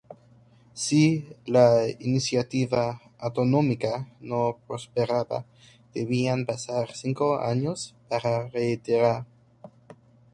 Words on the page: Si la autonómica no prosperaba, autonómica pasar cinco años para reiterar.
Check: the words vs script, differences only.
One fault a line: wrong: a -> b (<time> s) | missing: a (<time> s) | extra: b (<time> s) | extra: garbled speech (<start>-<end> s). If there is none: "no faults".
extra: iniciativa (2.0 s)
wrong: autonómica -> debían (5.9 s)